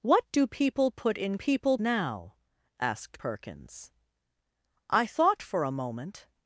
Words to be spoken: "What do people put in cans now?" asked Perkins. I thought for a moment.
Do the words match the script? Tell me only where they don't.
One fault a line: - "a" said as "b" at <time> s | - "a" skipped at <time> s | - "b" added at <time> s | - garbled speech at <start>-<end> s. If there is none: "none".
- "cans" said as "people" at 1.3 s